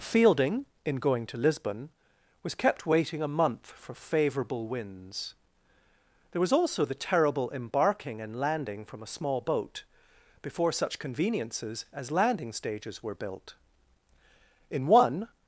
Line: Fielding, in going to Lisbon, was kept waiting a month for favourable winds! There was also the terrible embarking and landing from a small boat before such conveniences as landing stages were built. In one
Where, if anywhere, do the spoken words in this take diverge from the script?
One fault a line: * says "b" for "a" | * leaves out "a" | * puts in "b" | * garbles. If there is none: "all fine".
all fine